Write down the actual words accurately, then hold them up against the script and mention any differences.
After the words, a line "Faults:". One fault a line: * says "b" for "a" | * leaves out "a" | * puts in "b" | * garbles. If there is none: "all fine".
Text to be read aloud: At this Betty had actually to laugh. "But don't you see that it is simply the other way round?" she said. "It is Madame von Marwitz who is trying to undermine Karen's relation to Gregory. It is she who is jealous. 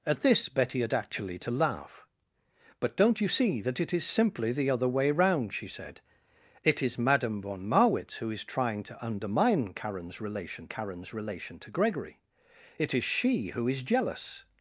At this Betty had actually to laugh. "But don't you see that it is simply the other way round?" she said. "It is Madame von Marwitz who is trying to undermine Karen's relation Karen's relation to Gregory. It is she who is jealous.
Faults:
* puts in "Karen's relation"